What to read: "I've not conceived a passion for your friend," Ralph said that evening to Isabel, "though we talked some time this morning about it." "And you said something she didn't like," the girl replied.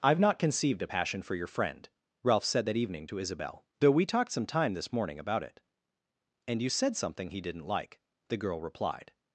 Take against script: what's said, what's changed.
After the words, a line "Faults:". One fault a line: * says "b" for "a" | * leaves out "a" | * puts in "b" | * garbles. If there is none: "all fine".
"I've not conceived a passion for your friend," Ralph said that evening to Isabel, "though we talked some time this morning about it." "And you said something he didn't like," the girl replied.
Faults:
* says "he" for "she"